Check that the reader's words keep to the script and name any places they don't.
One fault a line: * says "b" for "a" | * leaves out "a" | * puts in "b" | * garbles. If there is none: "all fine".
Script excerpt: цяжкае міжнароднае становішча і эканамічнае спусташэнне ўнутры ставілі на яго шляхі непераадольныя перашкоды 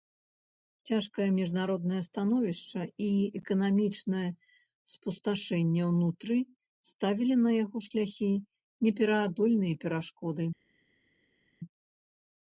all fine